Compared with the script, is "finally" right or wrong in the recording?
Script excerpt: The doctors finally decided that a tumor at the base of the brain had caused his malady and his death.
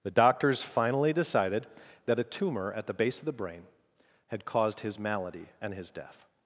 right